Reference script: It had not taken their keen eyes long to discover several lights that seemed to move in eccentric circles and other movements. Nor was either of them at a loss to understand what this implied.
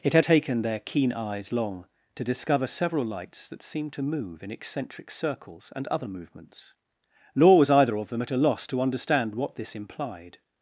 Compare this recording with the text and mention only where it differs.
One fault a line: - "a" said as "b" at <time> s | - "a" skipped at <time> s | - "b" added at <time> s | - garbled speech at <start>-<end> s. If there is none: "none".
- "not" skipped at 0.2 s